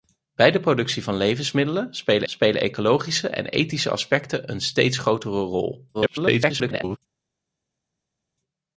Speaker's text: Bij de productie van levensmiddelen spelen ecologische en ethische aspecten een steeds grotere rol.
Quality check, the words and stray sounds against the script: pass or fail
fail